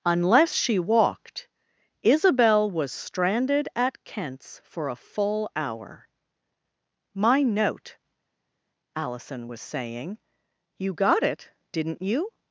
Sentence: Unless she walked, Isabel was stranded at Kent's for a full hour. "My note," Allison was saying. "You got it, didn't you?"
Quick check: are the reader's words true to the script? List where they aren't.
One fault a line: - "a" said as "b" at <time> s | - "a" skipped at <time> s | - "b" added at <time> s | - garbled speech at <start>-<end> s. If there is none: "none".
none